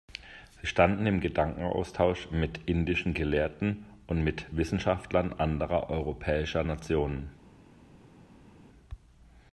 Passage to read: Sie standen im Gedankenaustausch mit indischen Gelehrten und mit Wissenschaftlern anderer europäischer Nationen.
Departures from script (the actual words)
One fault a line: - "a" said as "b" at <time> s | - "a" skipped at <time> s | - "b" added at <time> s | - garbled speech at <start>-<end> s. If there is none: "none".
none